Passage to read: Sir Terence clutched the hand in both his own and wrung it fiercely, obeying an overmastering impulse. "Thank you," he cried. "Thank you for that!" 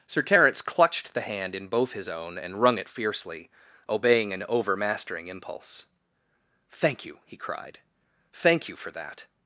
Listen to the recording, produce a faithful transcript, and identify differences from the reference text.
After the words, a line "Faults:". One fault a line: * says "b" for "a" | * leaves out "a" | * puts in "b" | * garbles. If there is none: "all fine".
Sir Terence clutched the hand in both his own and wrung it fiercely, obeying an overmastering impulse. "Thank you," he cried. "Thank you for that!"
Faults:
all fine